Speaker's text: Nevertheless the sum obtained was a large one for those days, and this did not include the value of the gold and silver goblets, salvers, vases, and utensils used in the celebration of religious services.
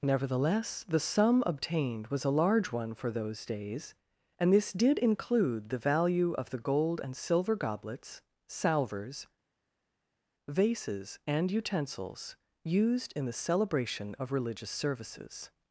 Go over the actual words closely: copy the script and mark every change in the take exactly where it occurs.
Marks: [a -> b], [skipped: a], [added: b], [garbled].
Nevertheless the sum obtained was a large one for those days, and this did [skipped: not] include the value of the gold and silver goblets, salvers, vases, and utensils used in the celebration of religious services.